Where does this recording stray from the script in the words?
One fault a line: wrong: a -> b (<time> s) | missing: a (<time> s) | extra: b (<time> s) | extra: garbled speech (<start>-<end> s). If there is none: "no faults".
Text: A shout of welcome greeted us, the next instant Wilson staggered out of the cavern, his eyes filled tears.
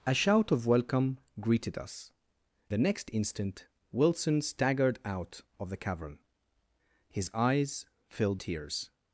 no faults